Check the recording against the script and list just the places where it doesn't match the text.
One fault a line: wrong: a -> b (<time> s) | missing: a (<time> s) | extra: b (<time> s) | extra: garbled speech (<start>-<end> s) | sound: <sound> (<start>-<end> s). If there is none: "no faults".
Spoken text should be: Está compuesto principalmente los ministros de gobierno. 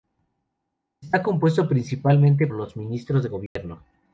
sound: dropout (3.5-3.6 s)